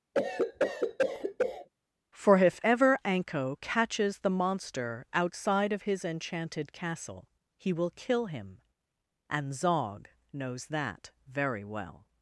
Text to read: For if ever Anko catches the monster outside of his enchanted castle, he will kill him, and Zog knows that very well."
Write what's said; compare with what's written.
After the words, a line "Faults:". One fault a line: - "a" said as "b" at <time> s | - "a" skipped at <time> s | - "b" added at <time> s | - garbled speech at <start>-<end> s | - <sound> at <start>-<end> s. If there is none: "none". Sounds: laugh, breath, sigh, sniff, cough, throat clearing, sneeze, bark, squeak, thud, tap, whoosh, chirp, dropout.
For if ever Anko catches the monster outside of his enchanted castle, he will kill him, and Zog knows that very well."
Faults:
- cough at 0.1-1.7 s